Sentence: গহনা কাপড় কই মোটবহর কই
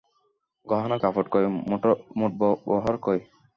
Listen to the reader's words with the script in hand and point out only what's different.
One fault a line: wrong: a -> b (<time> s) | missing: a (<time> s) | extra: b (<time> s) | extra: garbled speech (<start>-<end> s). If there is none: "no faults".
no faults